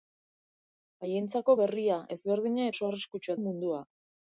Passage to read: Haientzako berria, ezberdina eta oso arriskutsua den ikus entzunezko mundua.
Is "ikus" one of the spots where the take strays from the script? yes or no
yes